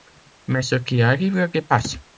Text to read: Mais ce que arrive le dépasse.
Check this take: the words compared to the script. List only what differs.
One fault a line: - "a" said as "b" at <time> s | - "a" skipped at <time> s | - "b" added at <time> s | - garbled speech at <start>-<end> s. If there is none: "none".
- "que" said as "qui" at 0.8 s